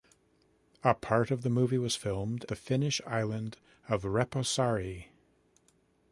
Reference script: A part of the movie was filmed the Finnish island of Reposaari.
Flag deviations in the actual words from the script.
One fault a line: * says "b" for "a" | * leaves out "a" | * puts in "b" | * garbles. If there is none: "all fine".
all fine